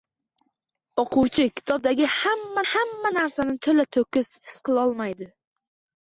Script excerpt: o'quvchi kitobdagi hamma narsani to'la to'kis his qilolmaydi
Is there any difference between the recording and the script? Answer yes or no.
yes